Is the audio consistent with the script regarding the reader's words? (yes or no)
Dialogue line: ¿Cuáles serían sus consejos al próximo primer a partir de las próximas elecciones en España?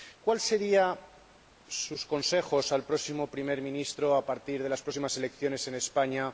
no